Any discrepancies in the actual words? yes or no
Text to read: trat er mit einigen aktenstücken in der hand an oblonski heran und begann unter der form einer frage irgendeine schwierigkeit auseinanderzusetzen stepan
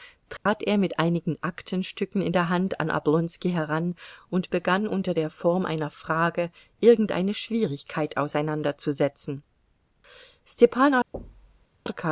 no